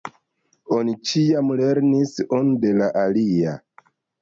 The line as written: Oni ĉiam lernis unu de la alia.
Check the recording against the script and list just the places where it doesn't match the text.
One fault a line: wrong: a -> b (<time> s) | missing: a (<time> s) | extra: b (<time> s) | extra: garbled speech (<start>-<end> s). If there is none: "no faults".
no faults